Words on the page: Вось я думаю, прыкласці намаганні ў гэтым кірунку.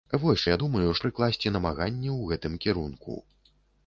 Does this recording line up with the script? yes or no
yes